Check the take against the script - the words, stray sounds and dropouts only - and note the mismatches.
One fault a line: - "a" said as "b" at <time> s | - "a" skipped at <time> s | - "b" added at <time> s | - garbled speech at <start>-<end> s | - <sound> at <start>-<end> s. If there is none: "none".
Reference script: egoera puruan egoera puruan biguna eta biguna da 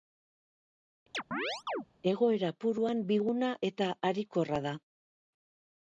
- chirp at 1.1-1.9 s
- "egoera puruan" skipped at 3.0 s
- "biguna" said as "harikorra" at 4.1 s